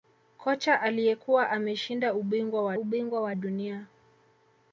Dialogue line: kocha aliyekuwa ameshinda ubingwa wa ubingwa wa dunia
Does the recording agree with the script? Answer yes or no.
yes